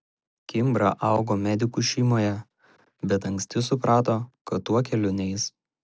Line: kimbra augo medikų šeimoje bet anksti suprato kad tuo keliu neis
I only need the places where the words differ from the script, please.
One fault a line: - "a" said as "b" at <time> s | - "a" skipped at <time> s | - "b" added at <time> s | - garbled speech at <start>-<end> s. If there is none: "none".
none